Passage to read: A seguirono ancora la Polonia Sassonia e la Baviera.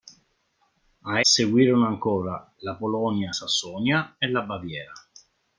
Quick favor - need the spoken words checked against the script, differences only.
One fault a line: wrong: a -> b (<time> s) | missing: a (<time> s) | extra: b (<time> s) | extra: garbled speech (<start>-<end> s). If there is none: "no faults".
no faults